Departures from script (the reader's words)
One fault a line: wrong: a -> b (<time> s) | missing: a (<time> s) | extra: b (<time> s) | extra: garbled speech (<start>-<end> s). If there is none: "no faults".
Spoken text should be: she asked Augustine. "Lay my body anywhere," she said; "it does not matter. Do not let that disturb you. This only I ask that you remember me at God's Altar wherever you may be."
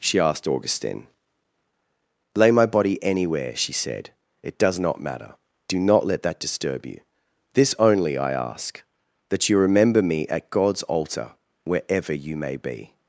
no faults